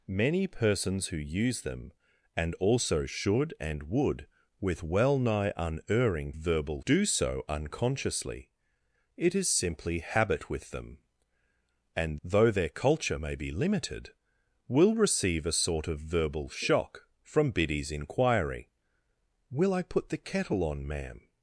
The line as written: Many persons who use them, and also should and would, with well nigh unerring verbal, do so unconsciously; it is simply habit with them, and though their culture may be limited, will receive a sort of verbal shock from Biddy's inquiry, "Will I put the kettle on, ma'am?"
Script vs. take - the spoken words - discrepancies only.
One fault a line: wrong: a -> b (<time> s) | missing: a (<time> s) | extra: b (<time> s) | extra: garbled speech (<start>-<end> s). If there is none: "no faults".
no faults